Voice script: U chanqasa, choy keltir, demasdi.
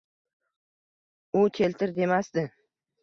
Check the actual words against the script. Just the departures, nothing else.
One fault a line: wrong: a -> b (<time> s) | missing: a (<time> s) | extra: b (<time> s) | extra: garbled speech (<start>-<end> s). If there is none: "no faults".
missing: chanqasa choy (1.4 s)